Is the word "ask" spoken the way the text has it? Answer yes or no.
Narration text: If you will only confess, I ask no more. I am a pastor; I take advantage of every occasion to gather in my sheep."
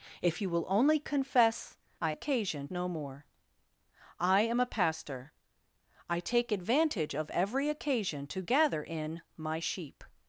no